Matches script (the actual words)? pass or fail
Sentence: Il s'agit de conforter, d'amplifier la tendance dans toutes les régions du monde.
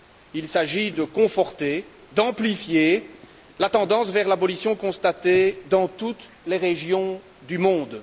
fail